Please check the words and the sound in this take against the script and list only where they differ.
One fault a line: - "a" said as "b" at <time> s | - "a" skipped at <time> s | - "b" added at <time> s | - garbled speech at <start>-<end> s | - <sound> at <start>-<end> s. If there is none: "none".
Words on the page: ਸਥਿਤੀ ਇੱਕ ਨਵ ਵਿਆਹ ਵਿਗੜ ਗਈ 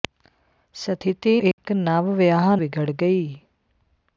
- dropout at 1.5-1.6 s